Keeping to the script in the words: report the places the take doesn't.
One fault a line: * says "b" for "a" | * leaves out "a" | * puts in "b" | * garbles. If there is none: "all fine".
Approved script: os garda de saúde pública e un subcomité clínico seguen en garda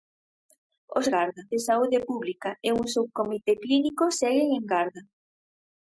all fine